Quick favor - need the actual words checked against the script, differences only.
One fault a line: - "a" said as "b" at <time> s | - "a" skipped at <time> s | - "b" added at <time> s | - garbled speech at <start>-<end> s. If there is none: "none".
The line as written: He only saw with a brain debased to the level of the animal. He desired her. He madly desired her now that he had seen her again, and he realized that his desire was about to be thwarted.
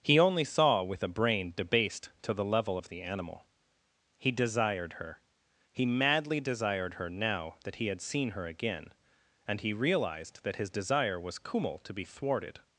- "about" said as "kummel" at 11.4 s